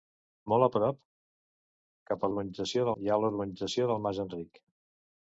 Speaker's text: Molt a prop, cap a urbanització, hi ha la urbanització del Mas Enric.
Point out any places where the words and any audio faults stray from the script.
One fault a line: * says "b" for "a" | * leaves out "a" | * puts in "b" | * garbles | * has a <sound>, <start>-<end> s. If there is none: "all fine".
all fine